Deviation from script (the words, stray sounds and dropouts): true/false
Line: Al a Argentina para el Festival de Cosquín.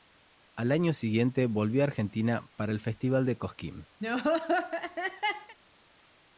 true